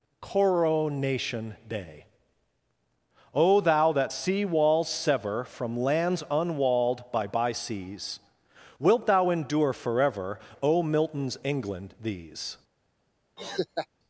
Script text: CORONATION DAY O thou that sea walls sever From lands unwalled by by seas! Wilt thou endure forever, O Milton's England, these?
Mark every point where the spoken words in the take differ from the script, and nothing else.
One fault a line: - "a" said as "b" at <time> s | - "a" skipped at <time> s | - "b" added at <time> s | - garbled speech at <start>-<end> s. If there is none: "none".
none